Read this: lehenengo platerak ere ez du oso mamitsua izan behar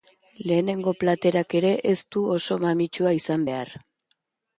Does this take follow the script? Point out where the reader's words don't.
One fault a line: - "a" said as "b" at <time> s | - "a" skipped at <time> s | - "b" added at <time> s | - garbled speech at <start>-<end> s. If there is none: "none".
none